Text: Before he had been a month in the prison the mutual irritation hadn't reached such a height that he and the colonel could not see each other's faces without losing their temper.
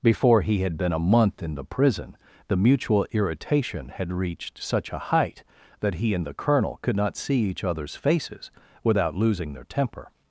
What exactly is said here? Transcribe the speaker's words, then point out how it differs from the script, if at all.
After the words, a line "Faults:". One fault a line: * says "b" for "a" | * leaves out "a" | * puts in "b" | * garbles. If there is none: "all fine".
Before he had been a month in the prison the mutual irritation had reached such a height that he and the colonel could not see each other's faces without losing their temper.
Faults:
* says "had" for "hadn't"